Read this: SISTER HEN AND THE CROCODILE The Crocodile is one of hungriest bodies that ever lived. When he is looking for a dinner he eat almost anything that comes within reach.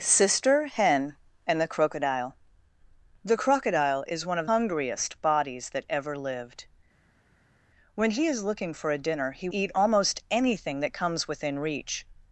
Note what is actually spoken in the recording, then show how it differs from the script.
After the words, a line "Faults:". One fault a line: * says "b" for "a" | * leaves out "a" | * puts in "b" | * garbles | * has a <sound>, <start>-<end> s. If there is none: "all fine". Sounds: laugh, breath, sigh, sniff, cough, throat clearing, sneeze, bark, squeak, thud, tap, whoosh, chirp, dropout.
SISTER HEN AND THE CROCODILE The Crocodile is one of hungriest bodies that ever lived. When he is looking for a dinner he eat almost anything that comes within reach.
Faults:
all fine